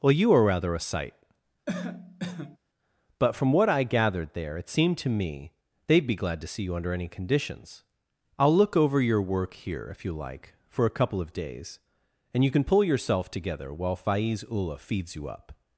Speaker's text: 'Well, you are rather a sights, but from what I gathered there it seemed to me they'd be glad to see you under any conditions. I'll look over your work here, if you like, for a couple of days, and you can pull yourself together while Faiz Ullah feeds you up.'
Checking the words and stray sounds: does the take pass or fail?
fail